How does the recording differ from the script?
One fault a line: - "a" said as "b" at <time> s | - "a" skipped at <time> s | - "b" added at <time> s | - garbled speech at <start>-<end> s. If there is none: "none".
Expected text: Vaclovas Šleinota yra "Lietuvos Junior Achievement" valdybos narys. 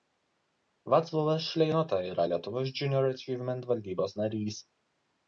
none